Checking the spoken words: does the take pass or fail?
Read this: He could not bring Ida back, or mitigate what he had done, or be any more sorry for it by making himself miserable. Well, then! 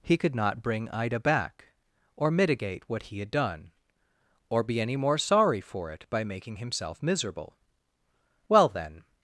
pass